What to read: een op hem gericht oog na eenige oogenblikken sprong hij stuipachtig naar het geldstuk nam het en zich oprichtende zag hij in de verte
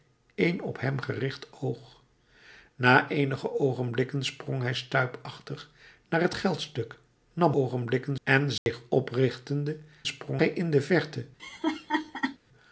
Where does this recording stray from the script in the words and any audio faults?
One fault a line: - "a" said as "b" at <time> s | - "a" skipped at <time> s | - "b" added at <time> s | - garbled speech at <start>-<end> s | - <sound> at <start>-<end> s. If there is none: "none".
- "het" said as "oogenblikken" at 7.5 s
- dropout at 8.6-8.7 s
- "zag" said as "sprong" at 10.1 s
- laugh at 11.4-12.4 s